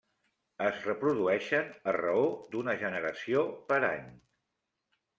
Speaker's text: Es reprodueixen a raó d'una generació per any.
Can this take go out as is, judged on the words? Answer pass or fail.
pass